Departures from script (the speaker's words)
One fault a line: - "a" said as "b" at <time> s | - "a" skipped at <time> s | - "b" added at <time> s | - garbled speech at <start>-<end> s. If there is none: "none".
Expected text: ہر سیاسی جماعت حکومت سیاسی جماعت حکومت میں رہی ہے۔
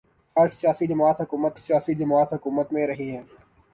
none